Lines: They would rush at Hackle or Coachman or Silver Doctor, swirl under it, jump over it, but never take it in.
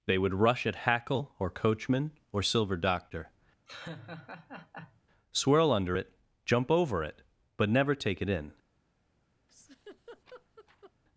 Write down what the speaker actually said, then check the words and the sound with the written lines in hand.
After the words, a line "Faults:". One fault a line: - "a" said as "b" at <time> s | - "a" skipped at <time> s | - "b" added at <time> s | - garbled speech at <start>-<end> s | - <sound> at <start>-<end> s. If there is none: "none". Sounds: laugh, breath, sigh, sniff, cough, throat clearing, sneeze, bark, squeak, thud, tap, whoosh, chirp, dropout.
They would rush at Hackle or Coachman or Silver Doctor, swirl under it, jump over it, but never take it in.
Faults:
- laugh at 3.7-5.0 s
- laugh at 9.5-10.9 s